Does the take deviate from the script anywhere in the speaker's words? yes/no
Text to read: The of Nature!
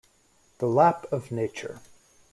yes